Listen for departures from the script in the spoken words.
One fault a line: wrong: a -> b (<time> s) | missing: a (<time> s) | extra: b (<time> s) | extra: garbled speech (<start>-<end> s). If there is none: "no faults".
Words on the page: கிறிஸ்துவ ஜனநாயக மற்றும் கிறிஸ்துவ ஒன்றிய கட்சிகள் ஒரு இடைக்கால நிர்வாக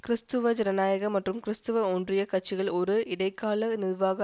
no faults